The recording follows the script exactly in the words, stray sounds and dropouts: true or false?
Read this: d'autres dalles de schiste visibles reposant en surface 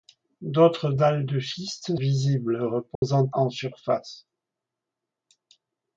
false